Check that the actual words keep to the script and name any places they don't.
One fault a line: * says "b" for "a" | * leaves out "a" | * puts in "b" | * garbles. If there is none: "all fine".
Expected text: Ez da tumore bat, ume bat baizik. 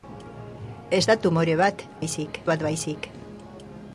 * says "baizik" for "ume"